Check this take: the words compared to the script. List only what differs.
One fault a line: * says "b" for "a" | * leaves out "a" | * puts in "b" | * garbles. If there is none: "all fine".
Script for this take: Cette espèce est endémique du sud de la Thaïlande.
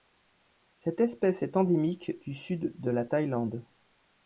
all fine